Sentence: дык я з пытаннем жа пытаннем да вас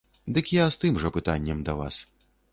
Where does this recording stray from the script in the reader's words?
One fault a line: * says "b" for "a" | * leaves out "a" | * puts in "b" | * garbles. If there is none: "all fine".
* says "тым" for "пытаннем"